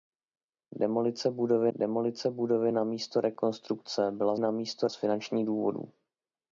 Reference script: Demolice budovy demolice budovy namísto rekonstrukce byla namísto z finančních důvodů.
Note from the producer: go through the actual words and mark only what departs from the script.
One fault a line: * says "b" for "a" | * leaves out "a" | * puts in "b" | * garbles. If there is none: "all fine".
all fine